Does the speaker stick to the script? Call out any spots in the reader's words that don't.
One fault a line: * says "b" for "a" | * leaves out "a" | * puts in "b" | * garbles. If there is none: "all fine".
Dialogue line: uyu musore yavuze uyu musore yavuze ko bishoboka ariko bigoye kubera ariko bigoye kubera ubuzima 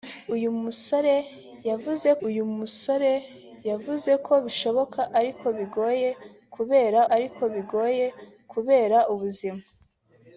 all fine